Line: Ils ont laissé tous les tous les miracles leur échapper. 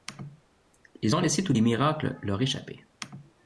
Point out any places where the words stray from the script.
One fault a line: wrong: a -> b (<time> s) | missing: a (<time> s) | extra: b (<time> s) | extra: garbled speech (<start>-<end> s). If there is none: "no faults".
missing: tous les (1.6 s)